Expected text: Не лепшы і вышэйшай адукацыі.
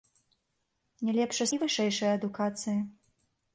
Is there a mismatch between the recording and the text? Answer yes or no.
no